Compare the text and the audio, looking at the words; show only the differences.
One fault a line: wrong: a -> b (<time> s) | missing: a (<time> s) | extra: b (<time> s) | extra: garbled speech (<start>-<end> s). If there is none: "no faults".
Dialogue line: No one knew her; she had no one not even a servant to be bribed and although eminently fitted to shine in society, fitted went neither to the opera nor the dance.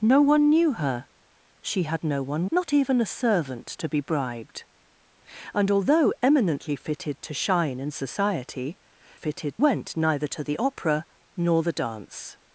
no faults